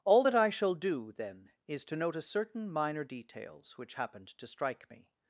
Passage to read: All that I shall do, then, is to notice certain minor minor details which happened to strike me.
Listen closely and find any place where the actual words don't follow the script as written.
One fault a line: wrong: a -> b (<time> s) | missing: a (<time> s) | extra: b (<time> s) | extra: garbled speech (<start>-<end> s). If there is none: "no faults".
missing: minor (3.0 s)